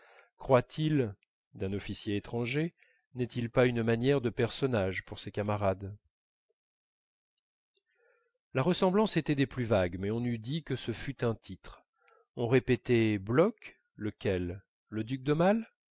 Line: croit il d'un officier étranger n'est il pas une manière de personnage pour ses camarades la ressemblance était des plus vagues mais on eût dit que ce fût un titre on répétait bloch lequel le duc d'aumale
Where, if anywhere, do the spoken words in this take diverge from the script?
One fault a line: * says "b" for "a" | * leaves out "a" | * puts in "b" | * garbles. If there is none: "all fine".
all fine